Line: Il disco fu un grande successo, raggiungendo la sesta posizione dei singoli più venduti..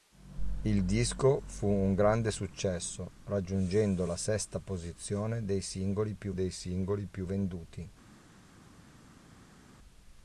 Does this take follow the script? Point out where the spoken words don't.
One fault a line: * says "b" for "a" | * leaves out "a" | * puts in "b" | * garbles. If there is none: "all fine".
* puts in "dei singoli più"